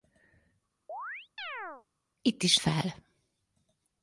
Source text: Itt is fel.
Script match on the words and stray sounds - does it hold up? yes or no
no